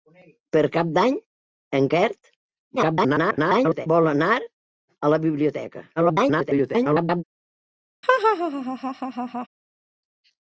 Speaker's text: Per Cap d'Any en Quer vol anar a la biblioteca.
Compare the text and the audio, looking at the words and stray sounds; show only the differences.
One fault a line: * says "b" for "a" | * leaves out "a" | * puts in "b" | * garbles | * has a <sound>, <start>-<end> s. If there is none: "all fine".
* garbles
* garbles
* has a laugh, 8.0-9.5 s